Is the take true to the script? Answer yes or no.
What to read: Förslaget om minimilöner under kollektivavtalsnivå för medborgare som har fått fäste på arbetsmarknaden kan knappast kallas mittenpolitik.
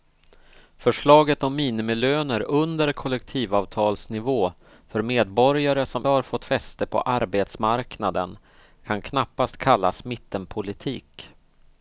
yes